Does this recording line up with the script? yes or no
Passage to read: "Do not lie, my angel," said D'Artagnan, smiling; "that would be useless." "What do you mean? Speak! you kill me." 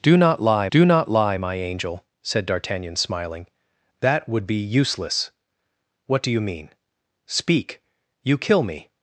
no